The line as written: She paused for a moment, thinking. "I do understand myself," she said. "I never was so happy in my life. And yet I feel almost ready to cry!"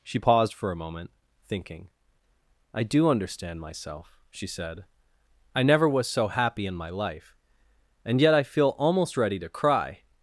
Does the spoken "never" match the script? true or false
true